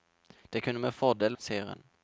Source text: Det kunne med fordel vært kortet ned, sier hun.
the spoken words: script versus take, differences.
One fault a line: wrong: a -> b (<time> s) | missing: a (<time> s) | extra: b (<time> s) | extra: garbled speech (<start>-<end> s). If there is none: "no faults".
missing: vært kortet ned (1.4 s)